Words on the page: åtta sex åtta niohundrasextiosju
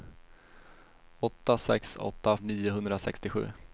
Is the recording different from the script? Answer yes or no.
no